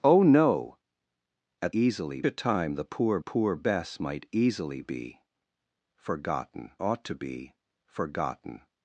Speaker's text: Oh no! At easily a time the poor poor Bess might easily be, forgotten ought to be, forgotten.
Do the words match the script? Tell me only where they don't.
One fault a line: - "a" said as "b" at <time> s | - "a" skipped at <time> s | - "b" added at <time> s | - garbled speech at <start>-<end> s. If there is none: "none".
none